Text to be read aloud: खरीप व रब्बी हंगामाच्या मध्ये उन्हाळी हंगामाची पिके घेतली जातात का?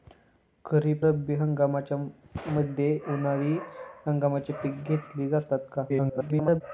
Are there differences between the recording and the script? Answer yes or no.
yes